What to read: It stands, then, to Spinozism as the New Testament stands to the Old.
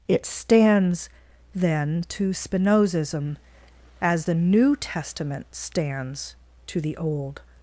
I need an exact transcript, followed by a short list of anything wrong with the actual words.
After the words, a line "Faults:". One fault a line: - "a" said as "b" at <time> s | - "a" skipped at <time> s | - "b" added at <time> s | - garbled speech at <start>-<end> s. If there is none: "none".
It stands, then, to Spinozism as the New Testament stands to the Old.
Faults:
none